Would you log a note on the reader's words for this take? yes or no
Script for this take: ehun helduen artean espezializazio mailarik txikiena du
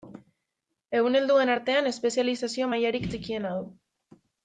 no